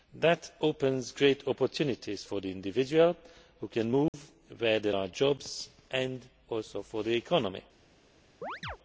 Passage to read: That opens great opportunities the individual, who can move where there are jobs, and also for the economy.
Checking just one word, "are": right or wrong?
right